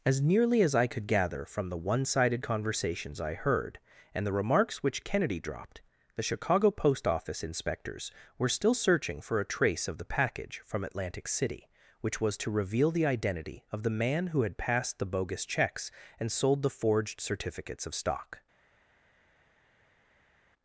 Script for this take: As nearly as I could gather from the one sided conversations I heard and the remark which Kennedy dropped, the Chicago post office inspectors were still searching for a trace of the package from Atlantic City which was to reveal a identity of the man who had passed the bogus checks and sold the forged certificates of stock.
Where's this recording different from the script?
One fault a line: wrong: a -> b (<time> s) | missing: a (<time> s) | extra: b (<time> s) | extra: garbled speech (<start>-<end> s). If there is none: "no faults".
wrong: remark -> remarks (4.3 s)
wrong: a -> the (12.9 s)